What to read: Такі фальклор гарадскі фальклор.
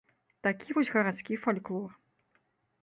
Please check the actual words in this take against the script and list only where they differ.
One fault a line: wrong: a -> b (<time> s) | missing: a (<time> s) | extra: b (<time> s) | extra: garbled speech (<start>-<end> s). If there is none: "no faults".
wrong: фальклор -> вось (0.8 s)